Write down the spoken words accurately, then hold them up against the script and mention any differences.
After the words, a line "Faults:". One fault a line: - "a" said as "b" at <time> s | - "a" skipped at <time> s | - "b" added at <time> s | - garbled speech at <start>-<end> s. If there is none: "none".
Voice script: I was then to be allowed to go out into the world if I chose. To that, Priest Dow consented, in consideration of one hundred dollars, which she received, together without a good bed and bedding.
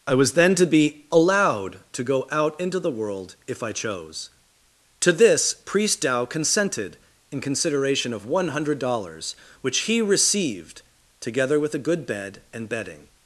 I was then to be allowed to go out into the world if I chose. To this, Priest Dow consented, in consideration of one hundred dollars, which he received, together with a good bed and bedding.
Faults:
- "that" said as "this" at 5.1 s
- "she" said as "he" at 9.8 s
- "without" said as "with" at 11.6 s